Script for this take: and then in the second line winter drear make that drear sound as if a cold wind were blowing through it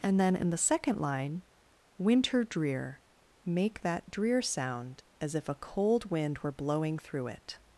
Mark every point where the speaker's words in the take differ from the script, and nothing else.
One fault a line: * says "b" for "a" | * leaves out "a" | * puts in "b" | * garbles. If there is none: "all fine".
all fine